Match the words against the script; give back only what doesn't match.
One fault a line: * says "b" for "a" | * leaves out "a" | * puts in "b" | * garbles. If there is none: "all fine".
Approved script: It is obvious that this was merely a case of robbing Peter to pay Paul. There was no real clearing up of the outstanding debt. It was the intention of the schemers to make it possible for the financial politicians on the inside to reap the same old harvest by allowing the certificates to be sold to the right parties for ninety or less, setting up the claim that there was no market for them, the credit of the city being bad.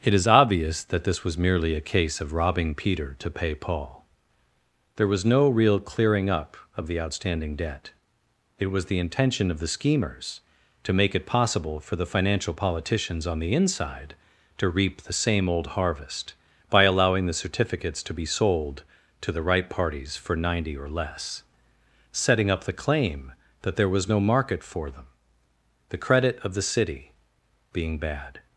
all fine